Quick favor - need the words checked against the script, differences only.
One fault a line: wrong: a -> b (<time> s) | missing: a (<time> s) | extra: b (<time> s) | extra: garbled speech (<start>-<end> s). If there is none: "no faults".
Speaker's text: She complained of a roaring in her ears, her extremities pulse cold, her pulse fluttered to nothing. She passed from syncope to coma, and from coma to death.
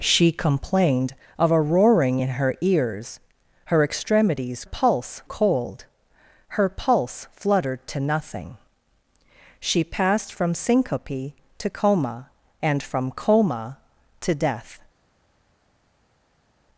no faults